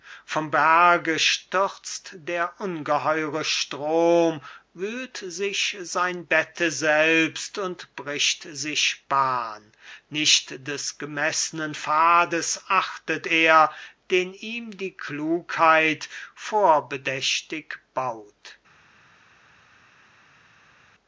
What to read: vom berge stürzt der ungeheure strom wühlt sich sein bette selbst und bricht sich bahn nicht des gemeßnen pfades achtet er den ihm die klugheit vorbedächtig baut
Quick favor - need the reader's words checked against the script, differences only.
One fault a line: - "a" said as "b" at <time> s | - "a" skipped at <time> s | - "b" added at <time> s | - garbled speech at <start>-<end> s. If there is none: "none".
none